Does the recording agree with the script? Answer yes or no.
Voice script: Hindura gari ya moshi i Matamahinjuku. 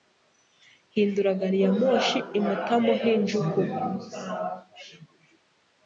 yes